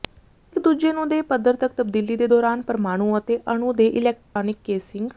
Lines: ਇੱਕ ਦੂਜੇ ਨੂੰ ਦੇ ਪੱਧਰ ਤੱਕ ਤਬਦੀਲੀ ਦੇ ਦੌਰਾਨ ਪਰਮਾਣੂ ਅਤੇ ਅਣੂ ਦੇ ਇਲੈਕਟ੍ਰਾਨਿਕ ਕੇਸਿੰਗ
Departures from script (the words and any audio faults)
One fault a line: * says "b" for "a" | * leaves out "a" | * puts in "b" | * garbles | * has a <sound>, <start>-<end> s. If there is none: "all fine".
* has a dropout, 4.2-4.4 s